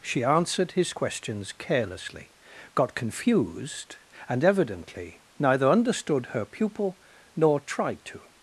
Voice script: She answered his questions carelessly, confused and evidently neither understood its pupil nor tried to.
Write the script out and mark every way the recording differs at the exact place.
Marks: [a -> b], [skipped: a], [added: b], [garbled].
She answered his questions carelessly, [added: got] confused and evidently neither understood [its -> her] pupil nor tried to.